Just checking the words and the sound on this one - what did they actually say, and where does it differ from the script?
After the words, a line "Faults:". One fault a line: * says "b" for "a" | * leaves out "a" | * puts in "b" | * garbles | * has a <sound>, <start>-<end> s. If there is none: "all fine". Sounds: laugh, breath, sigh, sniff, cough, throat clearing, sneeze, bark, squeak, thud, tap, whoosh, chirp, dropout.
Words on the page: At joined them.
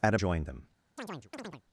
At joined them.
Faults:
* has a chirp, 1.0-1.6 s